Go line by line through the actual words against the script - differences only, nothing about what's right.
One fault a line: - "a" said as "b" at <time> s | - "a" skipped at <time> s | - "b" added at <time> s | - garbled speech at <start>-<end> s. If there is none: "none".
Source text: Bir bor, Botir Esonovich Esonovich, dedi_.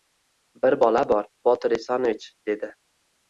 - "bola" added at 0.8 s
- "Esonovich" skipped at 2.3 s